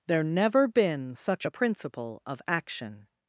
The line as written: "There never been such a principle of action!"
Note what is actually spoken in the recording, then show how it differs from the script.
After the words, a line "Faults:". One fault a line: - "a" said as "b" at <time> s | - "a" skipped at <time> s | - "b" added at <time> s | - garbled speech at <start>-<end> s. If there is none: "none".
"There never been such a principle of action!"
Faults:
none